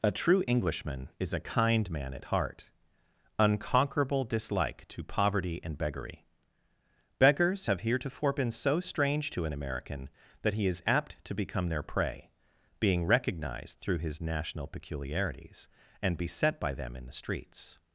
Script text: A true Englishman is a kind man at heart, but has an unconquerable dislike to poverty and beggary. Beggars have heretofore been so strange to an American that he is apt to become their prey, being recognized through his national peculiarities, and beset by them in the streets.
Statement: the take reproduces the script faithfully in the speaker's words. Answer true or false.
false